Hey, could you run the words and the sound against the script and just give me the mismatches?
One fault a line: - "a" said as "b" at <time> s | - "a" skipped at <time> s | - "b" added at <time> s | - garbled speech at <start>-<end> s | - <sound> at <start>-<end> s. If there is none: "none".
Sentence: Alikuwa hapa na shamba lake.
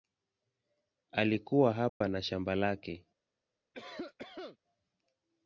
- dropout at 1.9-2.0 s
- cough at 3.7-4.6 s